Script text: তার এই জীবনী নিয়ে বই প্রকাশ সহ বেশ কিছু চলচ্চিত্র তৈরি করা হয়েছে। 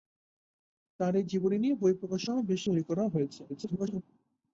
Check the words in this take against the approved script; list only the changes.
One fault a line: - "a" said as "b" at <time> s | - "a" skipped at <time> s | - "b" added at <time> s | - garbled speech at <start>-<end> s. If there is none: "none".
- "কিছু চলচ্চিত্র" skipped at 2.6 s
- garbled speech at 3.5-4.0 s